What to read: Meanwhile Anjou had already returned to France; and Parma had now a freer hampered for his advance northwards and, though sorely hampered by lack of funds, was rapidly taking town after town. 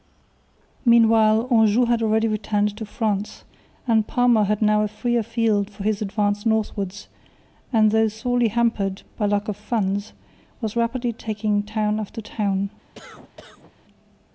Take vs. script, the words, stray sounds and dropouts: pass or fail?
fail